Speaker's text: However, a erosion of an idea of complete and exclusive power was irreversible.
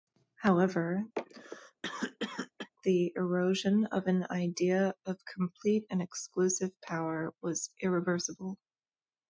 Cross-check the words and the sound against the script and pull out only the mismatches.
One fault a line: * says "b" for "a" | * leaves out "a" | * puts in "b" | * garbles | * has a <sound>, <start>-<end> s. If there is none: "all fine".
* has a cough, 1.1-2.7 s
* says "the" for "a"